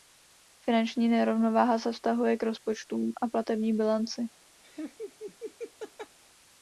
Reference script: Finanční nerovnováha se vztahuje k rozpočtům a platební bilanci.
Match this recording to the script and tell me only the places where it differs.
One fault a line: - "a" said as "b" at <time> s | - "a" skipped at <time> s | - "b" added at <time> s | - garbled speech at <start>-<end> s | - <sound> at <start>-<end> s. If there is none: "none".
- laugh at 4.6-6.2 s